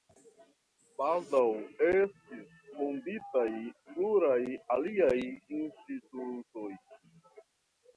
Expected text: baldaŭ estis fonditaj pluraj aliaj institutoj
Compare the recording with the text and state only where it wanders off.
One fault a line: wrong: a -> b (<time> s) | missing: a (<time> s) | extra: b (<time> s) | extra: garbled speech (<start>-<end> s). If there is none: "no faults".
no faults